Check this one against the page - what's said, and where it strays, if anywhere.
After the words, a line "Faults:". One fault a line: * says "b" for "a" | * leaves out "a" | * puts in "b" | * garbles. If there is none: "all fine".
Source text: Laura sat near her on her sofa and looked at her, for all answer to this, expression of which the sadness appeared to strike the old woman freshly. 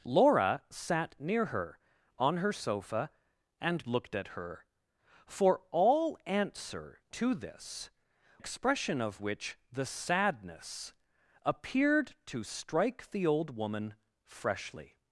Laura sat near her on her sofa and looked at her, for all answer to this, expression of which the sadness appeared to strike the old woman freshly.
Faults:
all fine